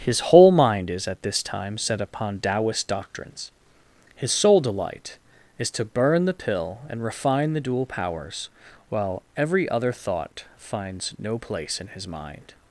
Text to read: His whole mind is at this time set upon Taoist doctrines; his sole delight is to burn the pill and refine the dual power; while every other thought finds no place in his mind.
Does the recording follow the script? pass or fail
fail